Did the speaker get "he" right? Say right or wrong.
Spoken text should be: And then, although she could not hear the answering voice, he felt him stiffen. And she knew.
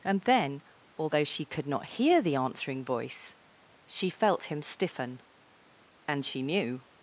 wrong